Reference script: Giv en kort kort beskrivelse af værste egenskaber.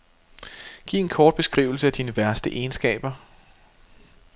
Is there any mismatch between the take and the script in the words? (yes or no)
yes